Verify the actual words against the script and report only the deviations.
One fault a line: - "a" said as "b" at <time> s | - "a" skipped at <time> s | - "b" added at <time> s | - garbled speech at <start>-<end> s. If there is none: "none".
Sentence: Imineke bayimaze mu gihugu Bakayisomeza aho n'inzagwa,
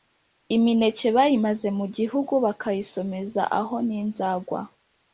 none